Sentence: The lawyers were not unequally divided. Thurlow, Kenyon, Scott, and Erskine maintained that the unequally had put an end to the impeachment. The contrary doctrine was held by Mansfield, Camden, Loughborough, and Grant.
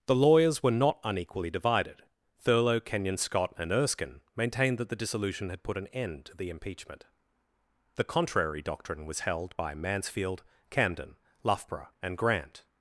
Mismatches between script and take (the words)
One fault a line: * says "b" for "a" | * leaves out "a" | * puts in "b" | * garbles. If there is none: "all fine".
* says "dissolution" for "unequally"